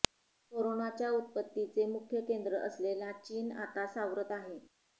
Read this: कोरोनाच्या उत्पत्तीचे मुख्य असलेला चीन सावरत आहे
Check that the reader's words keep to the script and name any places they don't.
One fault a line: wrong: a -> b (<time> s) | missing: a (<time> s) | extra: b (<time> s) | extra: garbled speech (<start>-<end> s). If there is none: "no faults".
extra: केंद्र (2.2 s)
extra: आता (3.6 s)